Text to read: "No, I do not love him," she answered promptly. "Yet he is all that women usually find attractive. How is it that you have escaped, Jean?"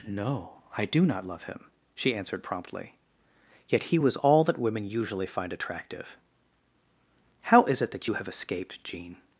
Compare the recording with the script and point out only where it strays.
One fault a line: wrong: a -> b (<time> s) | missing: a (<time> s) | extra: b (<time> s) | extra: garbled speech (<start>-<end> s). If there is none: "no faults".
wrong: is -> was (4.0 s)